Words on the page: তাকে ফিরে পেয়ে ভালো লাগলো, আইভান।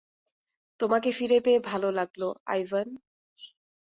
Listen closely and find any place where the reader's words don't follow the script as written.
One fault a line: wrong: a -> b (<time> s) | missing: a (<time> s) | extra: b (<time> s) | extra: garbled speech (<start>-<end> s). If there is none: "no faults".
wrong: তাকে -> তোমাকে (0.8 s)